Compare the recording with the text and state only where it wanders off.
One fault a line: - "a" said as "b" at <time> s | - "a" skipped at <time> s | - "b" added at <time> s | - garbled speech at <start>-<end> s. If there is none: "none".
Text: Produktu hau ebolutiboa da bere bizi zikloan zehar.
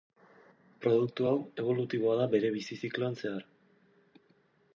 none